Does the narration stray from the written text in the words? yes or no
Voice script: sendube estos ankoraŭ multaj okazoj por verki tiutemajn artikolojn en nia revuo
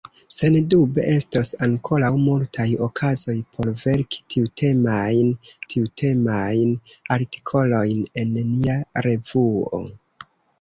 yes